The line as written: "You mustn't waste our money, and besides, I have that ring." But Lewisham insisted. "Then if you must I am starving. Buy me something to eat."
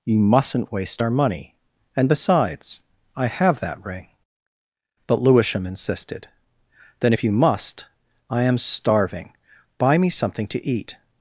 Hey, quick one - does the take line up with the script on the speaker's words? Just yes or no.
yes